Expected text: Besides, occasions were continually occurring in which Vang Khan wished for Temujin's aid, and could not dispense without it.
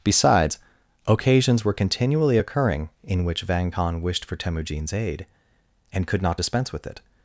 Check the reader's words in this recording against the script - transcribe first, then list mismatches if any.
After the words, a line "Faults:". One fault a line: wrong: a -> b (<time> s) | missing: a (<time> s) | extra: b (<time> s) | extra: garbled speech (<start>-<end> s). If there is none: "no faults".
Besides, occasions were continually occurring in which Vang Khan wished for Temujin's aid, and could not dispense with it.
Faults:
wrong: without -> with (6.7 s)